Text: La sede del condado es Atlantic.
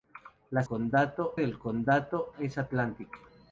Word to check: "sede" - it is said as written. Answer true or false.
false